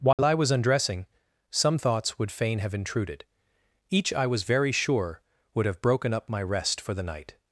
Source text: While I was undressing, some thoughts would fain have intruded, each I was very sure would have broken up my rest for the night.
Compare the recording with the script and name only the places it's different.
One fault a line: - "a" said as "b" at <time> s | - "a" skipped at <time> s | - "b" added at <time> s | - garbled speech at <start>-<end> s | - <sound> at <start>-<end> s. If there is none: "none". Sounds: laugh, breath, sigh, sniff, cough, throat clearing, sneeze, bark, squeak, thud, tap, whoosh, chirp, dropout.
- dropout at 0.1-0.2 s